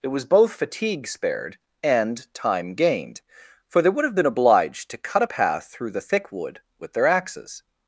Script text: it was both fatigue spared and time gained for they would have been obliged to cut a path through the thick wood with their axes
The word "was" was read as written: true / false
true